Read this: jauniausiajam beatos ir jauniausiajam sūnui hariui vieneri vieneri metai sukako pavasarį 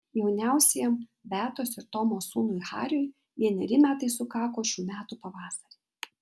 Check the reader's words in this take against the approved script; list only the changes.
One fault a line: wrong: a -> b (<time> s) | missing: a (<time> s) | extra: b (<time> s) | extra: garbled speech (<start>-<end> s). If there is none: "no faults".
wrong: jauniausiajam -> tomo (2.0 s)
missing: vieneri (3.8 s)
extra: šių metų (4.7 s)